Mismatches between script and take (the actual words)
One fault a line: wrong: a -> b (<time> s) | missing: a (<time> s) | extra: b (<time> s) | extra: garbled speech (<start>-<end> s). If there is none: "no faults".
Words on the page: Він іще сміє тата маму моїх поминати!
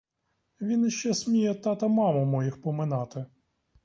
no faults